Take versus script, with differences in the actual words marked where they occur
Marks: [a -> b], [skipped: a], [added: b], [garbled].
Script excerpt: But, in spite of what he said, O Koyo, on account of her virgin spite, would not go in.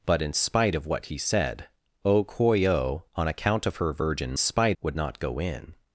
But, in spite of what he said, O Koyo, on account of her virgin spite, would not go in.